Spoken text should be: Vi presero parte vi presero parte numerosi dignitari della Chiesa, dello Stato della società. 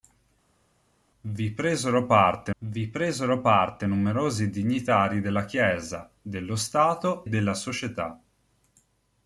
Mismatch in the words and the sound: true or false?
false